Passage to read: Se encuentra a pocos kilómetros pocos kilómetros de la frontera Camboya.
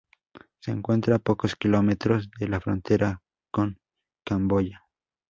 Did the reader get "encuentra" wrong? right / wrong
right